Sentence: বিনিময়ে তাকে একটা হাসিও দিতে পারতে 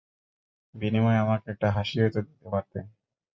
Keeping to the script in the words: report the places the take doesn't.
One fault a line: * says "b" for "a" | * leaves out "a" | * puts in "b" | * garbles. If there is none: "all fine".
* says "আমাকে" for "তাকে"
* puts in "তো"